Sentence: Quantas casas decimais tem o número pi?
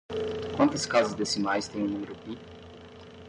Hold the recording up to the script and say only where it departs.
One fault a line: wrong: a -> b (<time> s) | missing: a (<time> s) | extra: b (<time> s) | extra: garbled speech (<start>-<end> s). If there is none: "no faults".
no faults